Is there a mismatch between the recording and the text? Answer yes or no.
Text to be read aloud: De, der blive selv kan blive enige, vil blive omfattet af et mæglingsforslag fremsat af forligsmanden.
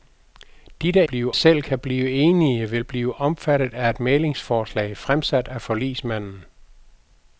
no